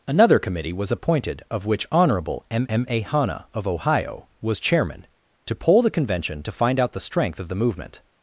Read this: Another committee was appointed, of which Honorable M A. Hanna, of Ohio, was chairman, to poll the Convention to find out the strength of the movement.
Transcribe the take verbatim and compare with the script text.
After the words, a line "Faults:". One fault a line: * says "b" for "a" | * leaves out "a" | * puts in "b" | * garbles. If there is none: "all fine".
Another committee was appointed, of which Honorable M M A. Hanna, of Ohio, was chairman, to poll the Convention to find out the strength of the movement.
Faults:
* puts in "M"